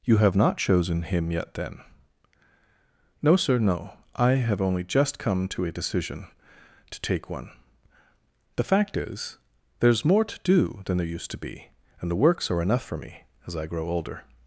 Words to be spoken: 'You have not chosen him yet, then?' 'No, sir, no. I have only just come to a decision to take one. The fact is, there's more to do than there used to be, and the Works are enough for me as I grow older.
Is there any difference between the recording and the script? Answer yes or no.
no